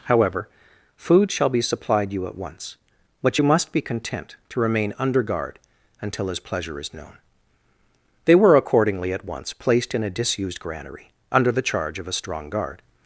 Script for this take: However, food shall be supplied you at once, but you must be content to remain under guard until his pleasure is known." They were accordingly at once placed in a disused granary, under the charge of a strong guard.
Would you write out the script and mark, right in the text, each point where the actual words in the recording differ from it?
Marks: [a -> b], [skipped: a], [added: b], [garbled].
However, food shall be supplied you at once, but you must be content to remain under guard until his pleasure is known." They were accordingly at once placed in a disused granary, under the charge of a strong guard.